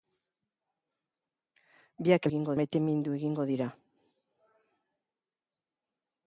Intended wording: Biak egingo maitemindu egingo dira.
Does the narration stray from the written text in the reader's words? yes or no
no